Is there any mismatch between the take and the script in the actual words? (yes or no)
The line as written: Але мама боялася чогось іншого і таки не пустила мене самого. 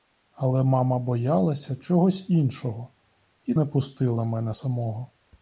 yes